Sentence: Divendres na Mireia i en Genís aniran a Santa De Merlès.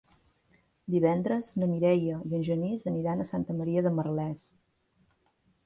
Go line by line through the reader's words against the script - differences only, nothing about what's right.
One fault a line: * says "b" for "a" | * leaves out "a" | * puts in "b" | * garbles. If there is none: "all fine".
* puts in "Maria"